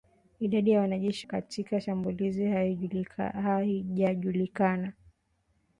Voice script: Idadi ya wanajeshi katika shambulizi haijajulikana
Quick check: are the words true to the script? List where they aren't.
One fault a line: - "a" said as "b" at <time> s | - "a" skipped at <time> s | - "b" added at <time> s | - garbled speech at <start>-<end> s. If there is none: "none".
none